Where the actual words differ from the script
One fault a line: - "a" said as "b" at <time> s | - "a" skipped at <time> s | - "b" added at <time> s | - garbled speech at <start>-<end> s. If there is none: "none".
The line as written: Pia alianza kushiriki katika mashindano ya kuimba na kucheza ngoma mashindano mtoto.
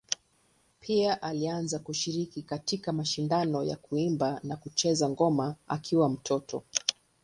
- "mashindano" said as "akiwa" at 5.7 s